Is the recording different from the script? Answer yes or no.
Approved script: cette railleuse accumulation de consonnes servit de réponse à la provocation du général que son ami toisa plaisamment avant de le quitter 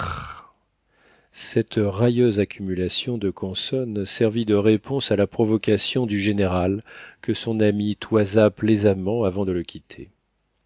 no